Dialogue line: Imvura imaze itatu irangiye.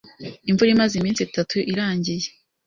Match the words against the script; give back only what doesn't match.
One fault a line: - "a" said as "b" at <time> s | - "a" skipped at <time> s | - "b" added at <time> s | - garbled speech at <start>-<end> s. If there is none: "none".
- "iminsi" added at 1.0 s